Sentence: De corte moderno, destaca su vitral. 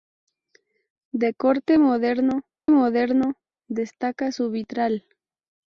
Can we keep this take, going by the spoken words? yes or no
no